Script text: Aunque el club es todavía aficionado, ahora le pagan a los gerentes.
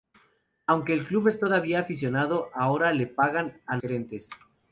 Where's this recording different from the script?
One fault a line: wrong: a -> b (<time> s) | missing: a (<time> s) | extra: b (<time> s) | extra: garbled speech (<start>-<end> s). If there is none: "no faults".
missing: los (3.8 s)